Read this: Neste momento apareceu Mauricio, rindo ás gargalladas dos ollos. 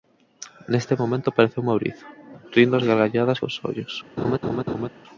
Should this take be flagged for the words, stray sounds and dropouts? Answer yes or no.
yes